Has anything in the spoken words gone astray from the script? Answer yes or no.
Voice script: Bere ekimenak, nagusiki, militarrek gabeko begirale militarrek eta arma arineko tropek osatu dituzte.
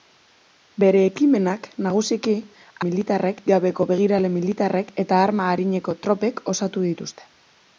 no